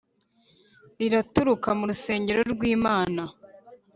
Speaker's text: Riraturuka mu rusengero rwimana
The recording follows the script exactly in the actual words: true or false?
true